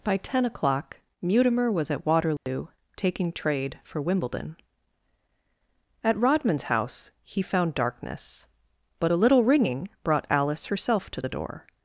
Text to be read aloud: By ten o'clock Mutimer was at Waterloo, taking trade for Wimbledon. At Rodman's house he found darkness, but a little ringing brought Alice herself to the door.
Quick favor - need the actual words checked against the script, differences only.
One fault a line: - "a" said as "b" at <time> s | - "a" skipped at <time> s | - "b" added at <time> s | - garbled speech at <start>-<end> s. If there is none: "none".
none